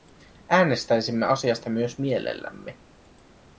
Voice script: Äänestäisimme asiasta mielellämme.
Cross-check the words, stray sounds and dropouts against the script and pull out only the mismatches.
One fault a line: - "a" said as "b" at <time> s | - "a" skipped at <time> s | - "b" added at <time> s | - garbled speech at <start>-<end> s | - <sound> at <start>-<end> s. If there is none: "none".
- "myös" added at 1.7 s